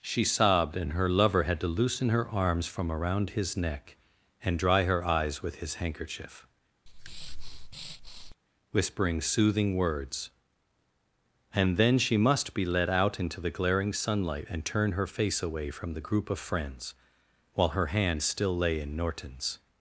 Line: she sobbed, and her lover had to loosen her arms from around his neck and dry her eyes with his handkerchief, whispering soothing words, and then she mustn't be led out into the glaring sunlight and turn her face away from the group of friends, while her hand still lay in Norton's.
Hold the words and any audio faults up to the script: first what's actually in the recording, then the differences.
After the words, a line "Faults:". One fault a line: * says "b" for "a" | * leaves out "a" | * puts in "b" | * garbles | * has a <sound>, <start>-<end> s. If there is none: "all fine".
she sobbed, and her lover had to loosen her arms from around his neck and dry her eyes with his handkerchief, whispering soothing words, and then she must be led out into the glaring sunlight and turn her face away from the group of friends, while her hand still lay in Norton's.
Faults:
* has a breath, 6.9-8.3 s
* says "must" for "mustn't"